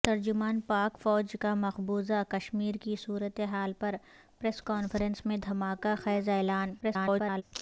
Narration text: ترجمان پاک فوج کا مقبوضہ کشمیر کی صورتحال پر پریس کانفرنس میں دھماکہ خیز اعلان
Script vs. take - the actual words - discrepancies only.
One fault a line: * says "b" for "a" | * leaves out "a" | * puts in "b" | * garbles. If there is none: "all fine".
* garbles